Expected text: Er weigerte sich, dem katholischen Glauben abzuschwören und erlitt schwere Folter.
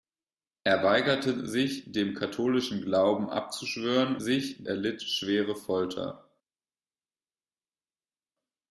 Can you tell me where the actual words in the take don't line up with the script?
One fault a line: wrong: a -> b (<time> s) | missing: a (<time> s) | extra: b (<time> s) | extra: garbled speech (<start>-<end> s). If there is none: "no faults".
wrong: und -> sich (4.2 s)